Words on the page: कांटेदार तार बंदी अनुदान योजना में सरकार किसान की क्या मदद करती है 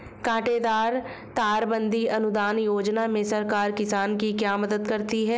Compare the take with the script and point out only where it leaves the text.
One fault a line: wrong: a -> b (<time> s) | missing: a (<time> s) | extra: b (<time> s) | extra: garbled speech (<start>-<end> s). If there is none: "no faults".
no faults